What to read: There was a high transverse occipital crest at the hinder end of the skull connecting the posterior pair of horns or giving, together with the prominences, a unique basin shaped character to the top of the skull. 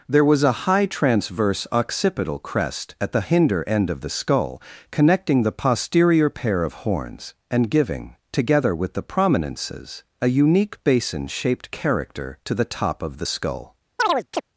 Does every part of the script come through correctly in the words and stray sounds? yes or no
no